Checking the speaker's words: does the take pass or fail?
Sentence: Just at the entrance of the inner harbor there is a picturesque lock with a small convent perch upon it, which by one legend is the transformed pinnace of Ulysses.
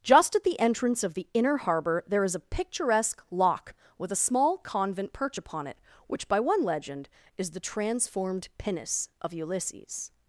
pass